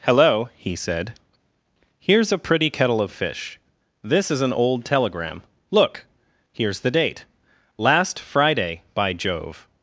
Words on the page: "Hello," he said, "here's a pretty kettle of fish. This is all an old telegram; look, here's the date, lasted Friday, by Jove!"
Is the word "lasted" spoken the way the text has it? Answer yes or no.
no